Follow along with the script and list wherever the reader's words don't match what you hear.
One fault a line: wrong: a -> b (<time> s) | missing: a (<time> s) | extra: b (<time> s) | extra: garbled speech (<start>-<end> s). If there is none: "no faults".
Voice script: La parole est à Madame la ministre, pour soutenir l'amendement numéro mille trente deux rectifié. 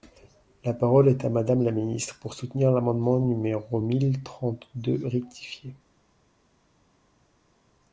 no faults